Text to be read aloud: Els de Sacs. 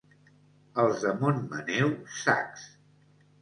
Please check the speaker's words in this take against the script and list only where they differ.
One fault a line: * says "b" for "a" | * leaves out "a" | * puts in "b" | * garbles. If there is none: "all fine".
* puts in "Montmaneu"